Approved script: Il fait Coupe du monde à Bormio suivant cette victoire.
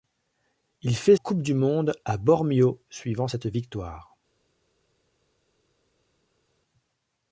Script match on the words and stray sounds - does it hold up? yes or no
yes